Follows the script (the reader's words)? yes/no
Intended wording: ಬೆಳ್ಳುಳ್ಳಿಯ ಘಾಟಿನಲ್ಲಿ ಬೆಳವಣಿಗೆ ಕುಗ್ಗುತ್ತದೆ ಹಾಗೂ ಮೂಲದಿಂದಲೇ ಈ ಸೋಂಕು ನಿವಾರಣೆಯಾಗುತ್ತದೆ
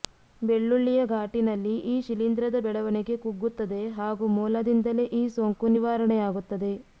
no